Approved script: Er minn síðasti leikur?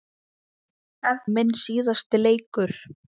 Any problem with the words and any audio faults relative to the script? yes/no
no